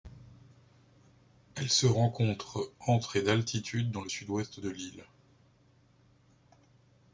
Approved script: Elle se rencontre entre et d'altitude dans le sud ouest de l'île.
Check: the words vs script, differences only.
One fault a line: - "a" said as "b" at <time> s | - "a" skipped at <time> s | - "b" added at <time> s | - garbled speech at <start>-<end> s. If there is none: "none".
none